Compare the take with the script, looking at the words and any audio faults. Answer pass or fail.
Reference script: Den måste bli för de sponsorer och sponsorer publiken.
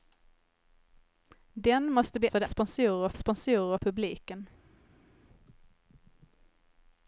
pass